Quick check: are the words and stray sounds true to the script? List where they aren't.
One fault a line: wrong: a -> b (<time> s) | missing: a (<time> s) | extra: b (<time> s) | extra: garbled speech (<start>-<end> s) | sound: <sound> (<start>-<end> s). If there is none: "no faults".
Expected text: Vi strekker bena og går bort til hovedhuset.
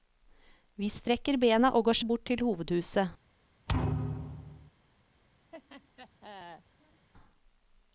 sound: thud (3.7-4.7 s)
sound: laugh (5.5-7.1 s)